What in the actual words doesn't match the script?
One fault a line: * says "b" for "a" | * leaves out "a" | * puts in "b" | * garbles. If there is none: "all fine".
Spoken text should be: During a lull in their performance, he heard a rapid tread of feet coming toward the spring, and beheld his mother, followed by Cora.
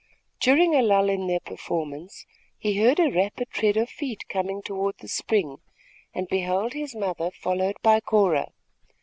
all fine